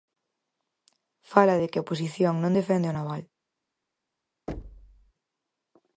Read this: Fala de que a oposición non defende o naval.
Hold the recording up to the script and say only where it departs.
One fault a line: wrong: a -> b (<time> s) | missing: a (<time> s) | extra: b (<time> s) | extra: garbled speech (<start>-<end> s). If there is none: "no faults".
no faults